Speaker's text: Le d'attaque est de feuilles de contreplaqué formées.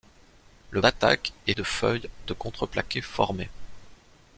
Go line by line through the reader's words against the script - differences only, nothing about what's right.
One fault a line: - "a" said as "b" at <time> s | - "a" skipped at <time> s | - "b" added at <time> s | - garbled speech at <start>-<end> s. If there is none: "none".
none